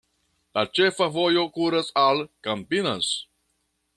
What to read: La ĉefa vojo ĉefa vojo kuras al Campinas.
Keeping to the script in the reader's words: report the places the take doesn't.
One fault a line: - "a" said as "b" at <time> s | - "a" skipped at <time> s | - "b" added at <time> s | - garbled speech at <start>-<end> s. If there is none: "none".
- "ĉefa vojo" skipped at 1.4 s